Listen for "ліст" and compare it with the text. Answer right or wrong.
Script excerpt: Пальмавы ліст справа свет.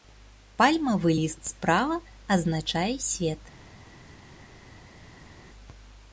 right